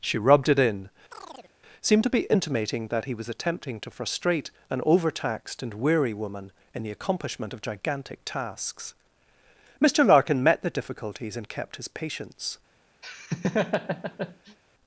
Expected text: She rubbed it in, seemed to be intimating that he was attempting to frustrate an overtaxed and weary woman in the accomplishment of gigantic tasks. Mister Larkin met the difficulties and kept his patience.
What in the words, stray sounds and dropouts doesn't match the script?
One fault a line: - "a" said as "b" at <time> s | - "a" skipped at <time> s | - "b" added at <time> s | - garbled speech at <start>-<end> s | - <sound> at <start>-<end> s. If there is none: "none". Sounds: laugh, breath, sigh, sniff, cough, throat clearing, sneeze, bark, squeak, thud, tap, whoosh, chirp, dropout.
- chirp at 1.1-1.5 s
- laugh at 13.0-14.6 s